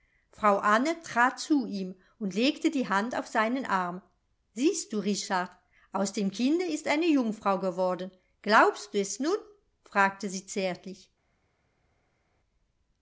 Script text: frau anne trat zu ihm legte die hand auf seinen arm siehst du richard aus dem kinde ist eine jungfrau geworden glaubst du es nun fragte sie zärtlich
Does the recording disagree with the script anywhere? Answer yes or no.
yes